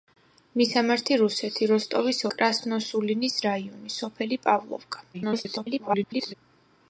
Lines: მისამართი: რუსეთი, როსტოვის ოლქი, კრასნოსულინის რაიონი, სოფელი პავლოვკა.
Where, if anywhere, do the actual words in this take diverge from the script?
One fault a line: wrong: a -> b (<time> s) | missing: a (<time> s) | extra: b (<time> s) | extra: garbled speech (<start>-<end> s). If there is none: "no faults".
missing: ოლქი (2.2 s)
extra: garbled speech (5.1-6.3 s)